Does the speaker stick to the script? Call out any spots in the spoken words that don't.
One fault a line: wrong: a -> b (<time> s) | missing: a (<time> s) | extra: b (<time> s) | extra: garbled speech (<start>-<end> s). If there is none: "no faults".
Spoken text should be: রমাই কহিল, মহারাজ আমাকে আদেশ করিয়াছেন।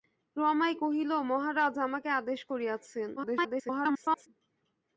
extra: garbled speech (3.2-4.3 s)